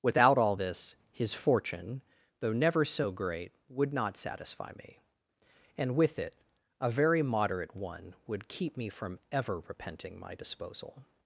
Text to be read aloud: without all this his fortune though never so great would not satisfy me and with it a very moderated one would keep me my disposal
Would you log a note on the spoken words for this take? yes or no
yes